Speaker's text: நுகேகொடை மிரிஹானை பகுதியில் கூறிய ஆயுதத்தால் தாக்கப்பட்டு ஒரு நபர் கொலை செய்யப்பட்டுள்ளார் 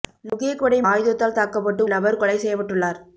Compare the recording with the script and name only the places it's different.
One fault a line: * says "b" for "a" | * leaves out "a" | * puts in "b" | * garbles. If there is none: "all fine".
* leaves out "மிரிஹானை பகுதியில் கூறிய"
* leaves out "ஒரு"